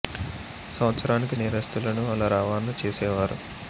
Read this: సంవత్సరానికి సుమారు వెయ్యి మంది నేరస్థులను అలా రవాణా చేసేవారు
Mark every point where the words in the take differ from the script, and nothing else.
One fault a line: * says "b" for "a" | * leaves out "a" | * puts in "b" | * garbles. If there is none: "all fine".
* leaves out "సుమారు వెయ్యి మంది"